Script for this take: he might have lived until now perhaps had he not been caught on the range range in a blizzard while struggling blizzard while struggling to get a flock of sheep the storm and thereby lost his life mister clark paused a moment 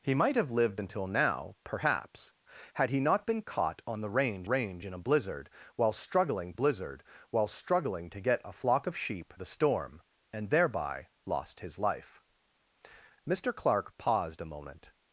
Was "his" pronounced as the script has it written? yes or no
yes